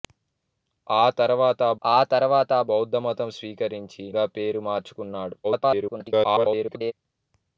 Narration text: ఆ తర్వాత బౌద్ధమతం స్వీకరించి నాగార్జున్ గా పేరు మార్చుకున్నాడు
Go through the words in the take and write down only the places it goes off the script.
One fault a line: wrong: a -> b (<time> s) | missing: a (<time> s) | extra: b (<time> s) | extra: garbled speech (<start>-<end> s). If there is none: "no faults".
extra: ఆ తర్వాత (1.8 s)
missing: నాగార్జున్ (4.0 s)
extra: garbled speech (5.4-6.9 s)